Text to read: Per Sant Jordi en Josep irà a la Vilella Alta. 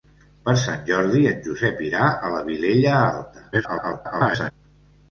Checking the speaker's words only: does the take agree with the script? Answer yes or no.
no